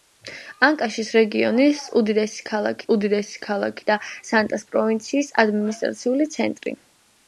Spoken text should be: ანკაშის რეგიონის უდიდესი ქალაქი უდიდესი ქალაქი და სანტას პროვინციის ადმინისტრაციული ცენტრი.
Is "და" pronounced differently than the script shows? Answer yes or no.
no